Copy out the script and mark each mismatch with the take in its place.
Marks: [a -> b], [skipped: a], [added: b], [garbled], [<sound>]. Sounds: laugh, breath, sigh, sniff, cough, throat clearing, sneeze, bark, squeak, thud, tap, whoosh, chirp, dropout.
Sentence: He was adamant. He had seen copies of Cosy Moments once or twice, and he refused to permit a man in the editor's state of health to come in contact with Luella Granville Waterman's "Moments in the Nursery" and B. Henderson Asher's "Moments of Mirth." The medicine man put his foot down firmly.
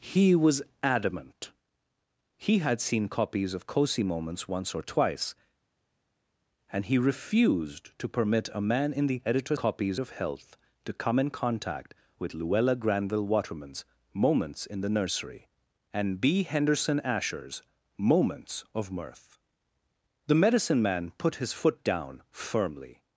He was adamant. He had seen copies of Cosy Moments once or twice, and he refused to permit a man in the editor's [state -> copies] of health to come in contact with Luella Granville Waterman's "Moments in the Nursery" and B. Henderson Asher's "Moments of Mirth." The medicine man put his foot down firmly.